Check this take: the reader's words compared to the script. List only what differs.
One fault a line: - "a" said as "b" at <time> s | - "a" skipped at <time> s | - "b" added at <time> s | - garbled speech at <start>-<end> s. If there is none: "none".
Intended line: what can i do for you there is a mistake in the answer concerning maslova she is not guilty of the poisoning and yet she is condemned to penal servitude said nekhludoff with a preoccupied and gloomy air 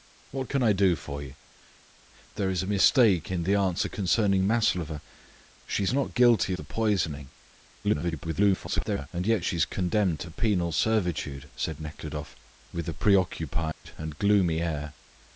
- "of" skipped at 6.5 s
- garbled speech at 7.8-9.1 s